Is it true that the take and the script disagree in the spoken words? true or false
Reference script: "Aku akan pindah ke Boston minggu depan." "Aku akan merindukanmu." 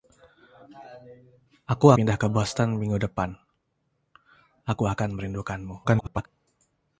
true